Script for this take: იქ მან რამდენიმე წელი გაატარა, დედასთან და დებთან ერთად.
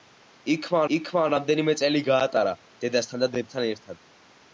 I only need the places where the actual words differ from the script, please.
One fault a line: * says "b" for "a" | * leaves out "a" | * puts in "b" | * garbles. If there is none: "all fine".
* puts in "იქ მან"